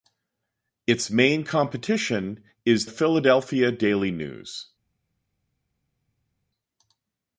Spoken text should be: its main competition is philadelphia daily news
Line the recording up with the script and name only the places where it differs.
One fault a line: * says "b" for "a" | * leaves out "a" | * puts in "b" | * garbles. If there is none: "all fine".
all fine